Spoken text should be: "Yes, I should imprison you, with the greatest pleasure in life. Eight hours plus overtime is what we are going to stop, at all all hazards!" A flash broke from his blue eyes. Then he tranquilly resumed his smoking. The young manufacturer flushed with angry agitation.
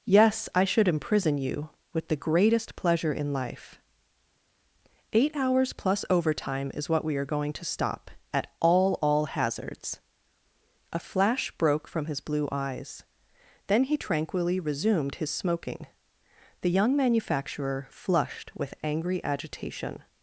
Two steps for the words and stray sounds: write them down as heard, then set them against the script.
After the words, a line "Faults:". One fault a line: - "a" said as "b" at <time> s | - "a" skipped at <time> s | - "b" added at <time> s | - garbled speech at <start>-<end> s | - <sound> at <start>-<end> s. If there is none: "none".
"Yes, I should imprison you, with the greatest pleasure in life. Eight hours plus overtime is what we are going to stop, at all all hazards!" A flash broke from his blue eyes. Then he tranquilly resumed his smoking. The young manufacturer flushed with angry agitation.
Faults:
none